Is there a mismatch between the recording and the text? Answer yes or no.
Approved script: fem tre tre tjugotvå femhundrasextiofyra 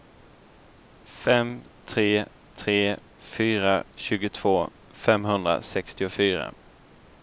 yes